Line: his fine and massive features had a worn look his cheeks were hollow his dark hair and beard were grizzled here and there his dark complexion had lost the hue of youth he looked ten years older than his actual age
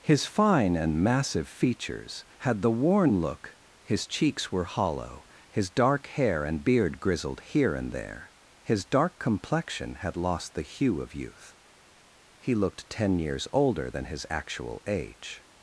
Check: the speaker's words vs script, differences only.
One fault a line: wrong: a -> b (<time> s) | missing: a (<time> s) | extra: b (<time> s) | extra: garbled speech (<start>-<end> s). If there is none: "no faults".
wrong: a -> the (2.6 s)
missing: were (7.0 s)